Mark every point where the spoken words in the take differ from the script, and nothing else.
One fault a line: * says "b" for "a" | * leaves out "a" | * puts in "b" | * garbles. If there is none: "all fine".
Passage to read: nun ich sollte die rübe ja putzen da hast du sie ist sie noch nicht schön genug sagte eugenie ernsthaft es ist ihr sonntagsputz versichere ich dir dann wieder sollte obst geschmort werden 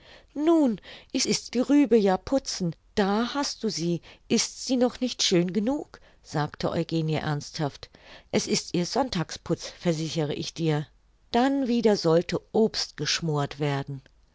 * says "ist" for "sollte"